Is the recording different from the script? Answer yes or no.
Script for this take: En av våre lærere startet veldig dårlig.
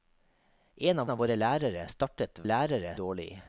yes